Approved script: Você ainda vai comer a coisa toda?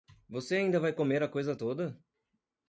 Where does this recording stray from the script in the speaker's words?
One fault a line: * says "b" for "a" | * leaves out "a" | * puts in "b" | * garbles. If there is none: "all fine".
all fine